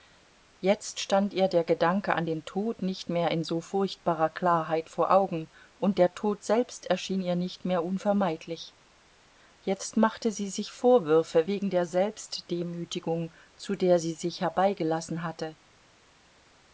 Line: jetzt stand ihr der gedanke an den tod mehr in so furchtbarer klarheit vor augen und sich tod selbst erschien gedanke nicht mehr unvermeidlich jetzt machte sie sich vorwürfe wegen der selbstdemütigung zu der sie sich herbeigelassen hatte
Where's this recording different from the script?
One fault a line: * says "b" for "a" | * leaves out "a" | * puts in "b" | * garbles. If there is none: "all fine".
* puts in "nicht"
* says "der" for "sich"
* says "ihr" for "gedanke"